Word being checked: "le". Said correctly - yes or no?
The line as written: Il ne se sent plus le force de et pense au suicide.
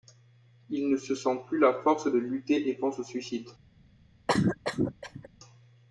no